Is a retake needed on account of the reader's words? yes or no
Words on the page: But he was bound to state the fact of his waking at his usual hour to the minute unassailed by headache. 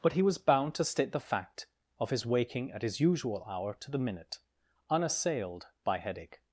no